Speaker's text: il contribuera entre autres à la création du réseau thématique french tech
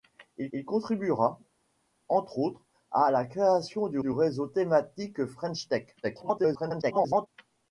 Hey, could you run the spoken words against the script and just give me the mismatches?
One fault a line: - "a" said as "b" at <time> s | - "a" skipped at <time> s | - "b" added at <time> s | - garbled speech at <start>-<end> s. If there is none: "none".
- "il" added at 0.5 s
- "du" added at 4.0 s
- garbled speech at 6.0-7.3 s